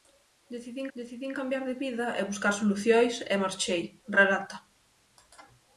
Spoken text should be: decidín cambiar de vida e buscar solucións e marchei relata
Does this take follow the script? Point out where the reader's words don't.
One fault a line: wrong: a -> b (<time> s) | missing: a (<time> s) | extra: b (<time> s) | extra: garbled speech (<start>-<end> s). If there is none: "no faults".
extra: decidín (1.0 s)